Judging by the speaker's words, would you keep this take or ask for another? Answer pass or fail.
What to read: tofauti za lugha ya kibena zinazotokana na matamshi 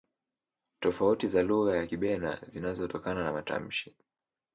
pass